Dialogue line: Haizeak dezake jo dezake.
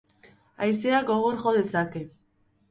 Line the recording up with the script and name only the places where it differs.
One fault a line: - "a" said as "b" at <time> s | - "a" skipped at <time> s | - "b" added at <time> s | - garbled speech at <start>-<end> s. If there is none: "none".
- "dezake" said as "gogor" at 1.1 s